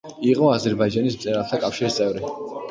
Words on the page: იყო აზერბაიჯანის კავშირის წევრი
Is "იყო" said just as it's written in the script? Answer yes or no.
yes